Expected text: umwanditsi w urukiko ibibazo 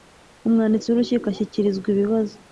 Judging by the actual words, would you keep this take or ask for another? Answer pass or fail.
fail